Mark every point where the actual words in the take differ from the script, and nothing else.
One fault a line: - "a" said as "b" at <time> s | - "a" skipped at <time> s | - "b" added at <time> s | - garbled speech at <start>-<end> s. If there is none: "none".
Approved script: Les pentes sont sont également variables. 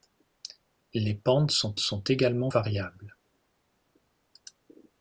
none